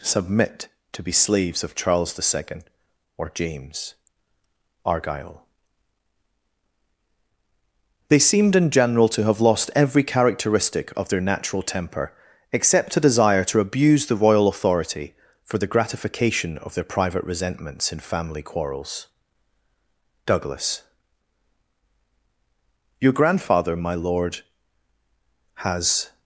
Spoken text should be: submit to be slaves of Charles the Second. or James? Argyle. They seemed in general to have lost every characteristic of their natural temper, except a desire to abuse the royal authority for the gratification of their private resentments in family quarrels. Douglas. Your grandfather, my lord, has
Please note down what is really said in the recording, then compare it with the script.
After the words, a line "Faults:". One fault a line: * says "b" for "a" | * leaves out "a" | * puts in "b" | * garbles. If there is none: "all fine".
submit to be slaves of Charles the Second. or James? Argyle. They seemed in general to have lost every characteristic of their natural temper, except a desire to abuse the royal authority for the gratification of their private resentments in family quarrels. Douglas. Your grandfather, my lord, has
Faults:
all fine